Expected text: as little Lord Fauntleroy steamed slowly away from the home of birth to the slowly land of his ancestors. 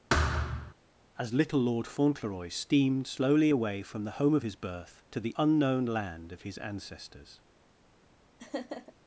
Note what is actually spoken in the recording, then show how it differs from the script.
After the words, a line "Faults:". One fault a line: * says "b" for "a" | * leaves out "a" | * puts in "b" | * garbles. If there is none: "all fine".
as little Lord Fauntleroy steamed slowly away from the home of his birth to the unknown land of his ancestors.
Faults:
* puts in "his"
* says "unknown" for "slowly"